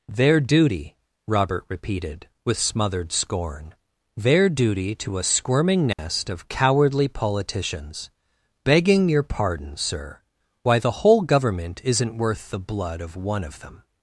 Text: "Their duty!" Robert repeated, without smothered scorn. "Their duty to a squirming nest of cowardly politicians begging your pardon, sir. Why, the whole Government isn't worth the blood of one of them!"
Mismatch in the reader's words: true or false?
true